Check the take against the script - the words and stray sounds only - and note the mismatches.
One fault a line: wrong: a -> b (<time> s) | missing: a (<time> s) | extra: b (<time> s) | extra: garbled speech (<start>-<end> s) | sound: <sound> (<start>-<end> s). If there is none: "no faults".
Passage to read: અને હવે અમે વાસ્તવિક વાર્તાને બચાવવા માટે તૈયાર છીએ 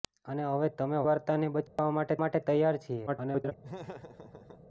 missing: વાસ્તવિક (1.0 s)
sound: dropout (1.7-1.8 s)
extra: માટે (2.2 s)
extra: garbled speech (3.1-3.5 s)
sound: laugh (3.6-4.7 s)